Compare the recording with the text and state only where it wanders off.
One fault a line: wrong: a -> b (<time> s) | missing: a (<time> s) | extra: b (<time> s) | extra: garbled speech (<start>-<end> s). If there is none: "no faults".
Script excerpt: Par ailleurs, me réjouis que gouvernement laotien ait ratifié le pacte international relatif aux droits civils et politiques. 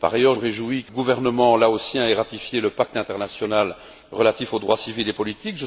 no faults